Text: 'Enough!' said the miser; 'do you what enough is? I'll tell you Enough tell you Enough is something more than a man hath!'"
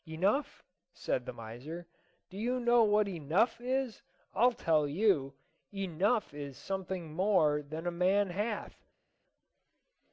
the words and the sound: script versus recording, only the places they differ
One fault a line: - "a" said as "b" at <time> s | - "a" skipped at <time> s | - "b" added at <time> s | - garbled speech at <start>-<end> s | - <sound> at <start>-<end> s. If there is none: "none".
- "know" added at 2.6 s
- "tell you Enough" skipped at 6.3 s